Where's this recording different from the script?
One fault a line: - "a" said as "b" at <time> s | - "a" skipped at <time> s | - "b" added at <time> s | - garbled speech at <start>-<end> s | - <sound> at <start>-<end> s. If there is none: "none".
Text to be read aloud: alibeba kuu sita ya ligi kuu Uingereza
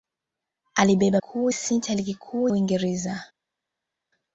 none